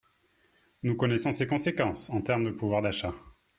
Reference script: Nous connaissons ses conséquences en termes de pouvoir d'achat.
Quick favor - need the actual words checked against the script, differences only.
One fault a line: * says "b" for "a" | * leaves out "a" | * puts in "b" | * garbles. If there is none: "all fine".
all fine